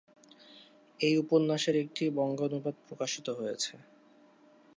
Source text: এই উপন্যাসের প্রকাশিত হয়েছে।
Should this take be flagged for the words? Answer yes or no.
yes